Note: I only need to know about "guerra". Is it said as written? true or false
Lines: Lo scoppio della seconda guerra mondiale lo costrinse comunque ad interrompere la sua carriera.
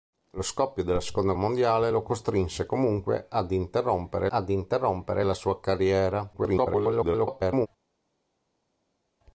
false